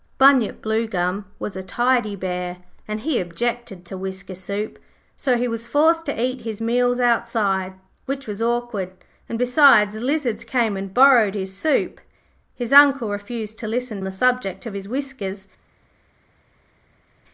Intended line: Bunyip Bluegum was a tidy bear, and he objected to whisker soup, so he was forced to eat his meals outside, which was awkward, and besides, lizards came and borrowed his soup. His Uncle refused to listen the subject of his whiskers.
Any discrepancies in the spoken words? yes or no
no